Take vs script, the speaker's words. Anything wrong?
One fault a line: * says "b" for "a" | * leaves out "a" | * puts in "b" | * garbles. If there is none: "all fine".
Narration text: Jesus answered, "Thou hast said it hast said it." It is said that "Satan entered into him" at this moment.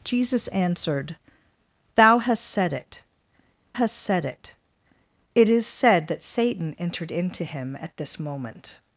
all fine